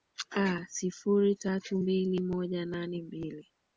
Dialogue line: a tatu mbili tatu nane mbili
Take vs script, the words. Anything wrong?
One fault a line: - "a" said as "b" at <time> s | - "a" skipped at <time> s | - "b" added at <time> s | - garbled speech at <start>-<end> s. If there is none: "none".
- "sifuri" added at 0.7 s
- "tatu" said as "moja" at 2.2 s